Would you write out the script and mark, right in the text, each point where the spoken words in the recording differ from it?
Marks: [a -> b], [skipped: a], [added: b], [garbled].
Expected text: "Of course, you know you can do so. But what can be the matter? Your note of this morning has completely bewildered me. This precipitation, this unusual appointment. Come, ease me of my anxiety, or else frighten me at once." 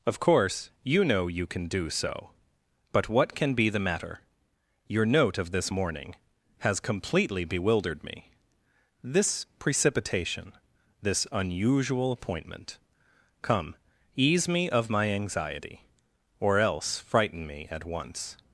"Of course, you know you can do so. But what can be the matter? Your note of this morning has completely bewildered me. This precipitation, this unusual appointment. Come, ease me of my anxiety, or else frighten me at once."